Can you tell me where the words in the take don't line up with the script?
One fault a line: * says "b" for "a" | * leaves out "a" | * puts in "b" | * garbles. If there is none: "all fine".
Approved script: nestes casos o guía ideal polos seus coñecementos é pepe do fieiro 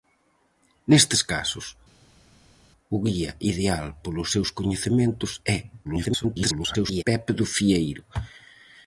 * garbles